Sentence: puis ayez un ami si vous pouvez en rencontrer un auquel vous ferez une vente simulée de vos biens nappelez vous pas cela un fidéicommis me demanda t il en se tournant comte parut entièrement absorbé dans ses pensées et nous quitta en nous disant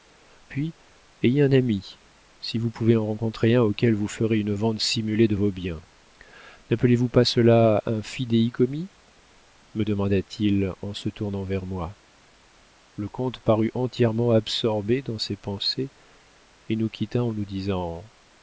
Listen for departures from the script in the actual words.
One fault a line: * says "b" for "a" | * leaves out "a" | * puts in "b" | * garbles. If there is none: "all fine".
* puts in "vers moi le"